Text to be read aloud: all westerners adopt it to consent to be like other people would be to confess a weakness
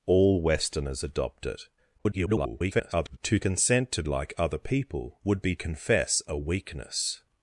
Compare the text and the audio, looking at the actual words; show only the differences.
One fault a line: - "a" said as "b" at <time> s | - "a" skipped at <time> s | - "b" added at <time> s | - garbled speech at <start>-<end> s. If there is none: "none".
- garbled speech at 2.0-3.2 s
- "be" skipped at 4.0 s
- "to" skipped at 5.6 s